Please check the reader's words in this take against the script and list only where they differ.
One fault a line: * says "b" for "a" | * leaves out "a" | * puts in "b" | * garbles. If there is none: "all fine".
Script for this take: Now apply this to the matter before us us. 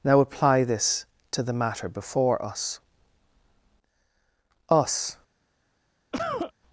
all fine